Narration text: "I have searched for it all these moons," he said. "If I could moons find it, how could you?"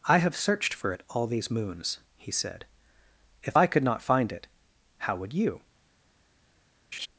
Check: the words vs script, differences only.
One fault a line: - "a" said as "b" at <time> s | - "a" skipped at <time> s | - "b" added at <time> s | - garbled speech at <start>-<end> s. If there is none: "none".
- "moons" said as "not" at 3.8 s
- "could" said as "would" at 5.2 s